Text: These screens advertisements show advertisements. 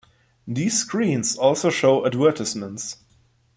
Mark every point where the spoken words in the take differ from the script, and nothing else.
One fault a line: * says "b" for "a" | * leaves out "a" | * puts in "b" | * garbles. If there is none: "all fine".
* says "also" for "advertisements"